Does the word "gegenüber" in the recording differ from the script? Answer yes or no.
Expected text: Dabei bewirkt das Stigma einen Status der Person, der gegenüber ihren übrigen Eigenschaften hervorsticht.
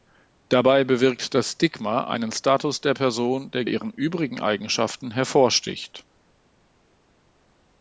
yes